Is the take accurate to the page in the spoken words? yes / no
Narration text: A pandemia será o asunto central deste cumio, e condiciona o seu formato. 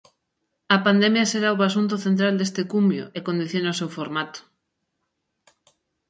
yes